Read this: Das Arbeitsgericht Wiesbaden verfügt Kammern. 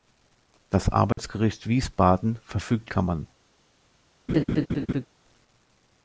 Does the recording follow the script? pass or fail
pass